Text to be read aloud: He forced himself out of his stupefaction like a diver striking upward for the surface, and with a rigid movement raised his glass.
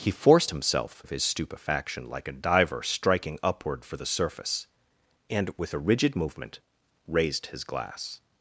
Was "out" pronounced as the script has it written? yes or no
no